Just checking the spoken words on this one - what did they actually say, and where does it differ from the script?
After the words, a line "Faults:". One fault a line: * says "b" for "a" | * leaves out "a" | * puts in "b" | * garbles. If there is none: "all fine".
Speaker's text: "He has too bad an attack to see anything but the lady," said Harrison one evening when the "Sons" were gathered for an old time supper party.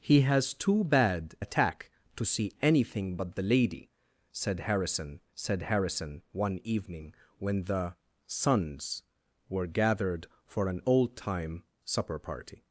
"He has too bad attack to see anything but the lady," said Harrison said Harrison one evening when the "Sons" were gathered for an old time supper party.
Faults:
* leaves out "an"
* puts in "said Harrison"